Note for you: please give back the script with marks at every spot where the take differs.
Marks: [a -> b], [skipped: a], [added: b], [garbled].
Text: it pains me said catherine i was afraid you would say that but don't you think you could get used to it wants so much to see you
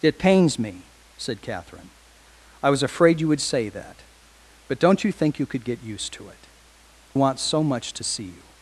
it pains me said catherine i was afraid you would say that but don't you think you could get used to it wants so much to see you